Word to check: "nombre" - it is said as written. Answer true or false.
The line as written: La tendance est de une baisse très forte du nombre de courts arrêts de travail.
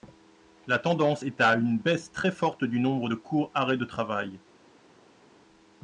true